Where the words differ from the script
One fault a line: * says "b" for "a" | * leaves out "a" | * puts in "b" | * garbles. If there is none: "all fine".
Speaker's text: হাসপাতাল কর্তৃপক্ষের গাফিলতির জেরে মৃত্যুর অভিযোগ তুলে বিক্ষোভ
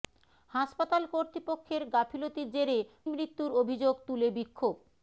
all fine